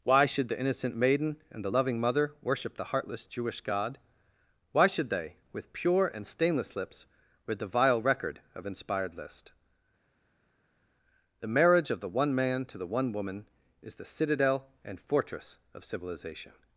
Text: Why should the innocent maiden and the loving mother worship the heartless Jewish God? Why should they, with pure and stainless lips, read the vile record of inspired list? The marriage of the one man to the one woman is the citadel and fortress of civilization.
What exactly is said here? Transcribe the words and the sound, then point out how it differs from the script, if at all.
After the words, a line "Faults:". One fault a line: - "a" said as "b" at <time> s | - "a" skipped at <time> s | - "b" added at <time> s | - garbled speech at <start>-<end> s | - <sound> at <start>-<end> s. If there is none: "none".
Why should the innocent maiden and the loving mother worship the heartless Jewish God? Why should they, with pure and stainless lips, read the vile record of inspired list? The marriage of the one man to the one woman is the citadel and fortress of civilization.
Faults:
none